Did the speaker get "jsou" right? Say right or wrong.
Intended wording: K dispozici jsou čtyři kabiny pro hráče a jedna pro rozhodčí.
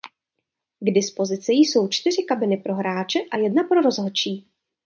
right